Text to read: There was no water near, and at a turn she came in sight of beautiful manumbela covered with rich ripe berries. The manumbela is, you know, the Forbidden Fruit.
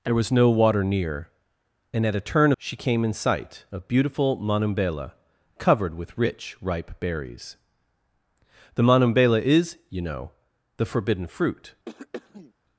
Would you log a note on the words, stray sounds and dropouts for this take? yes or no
yes